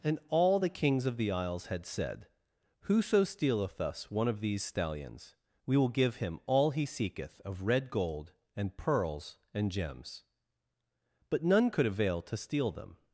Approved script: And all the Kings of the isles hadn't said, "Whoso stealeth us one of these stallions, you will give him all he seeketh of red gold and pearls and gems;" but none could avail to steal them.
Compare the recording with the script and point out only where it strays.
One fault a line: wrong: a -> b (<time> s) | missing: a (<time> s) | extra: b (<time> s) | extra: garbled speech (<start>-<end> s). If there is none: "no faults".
wrong: hadn't -> had (1.7 s)
wrong: you -> we (5.6 s)